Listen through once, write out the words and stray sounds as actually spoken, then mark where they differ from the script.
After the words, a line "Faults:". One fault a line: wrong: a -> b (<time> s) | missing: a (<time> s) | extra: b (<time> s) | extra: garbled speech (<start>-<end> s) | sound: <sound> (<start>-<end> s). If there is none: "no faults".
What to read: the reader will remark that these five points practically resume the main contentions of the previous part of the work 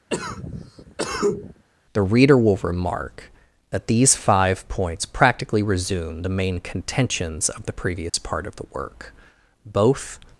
the reader will remark that these five points practically resume the main contentions of the previous part of the work both
Faults:
sound: cough (0.1-1.6 s)
sound: dropout (8.1-8.1 s)
extra: both (9.6 s)